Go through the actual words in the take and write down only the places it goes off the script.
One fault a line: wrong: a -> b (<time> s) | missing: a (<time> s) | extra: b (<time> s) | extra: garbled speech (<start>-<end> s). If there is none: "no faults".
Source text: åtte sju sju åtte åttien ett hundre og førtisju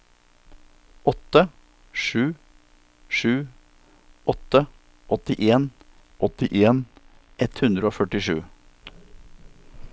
extra: åttien (6.3 s)